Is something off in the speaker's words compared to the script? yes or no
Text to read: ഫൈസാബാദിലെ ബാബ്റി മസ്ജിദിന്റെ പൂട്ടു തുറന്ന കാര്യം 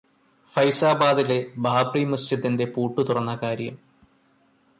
no